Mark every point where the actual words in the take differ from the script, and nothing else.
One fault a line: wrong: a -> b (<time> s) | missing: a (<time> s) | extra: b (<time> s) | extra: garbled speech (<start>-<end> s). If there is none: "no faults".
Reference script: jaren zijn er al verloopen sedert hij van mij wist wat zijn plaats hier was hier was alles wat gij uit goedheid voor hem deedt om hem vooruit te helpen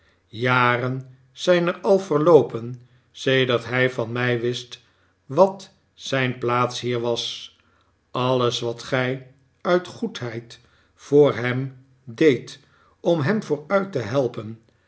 missing: hier was (7.5 s)